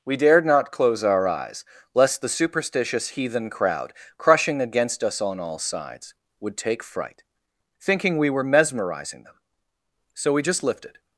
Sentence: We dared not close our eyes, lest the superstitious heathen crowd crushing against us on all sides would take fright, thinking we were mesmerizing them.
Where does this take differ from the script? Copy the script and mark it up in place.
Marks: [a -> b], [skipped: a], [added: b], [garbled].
We dared not close our eyes, lest the superstitious heathen crowd crushing against us on all sides would take fright, thinking we were mesmerizing them. [added: So we just lifted]